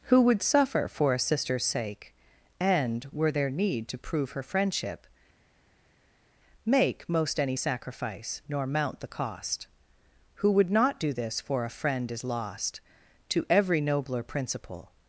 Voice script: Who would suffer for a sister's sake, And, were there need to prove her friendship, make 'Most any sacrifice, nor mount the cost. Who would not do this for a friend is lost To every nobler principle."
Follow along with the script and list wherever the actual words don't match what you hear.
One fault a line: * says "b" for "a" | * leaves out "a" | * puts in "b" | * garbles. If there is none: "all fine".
all fine